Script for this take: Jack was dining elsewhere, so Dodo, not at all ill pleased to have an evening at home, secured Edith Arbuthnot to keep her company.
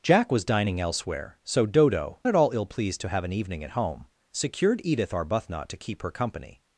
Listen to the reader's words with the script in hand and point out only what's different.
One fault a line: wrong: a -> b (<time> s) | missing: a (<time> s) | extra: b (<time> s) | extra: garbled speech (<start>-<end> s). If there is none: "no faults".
missing: not (2.2 s)